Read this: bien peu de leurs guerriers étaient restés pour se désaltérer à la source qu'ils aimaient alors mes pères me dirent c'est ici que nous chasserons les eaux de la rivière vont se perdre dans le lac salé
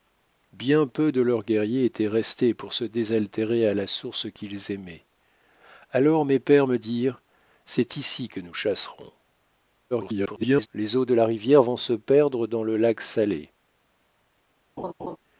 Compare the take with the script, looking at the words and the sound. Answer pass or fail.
fail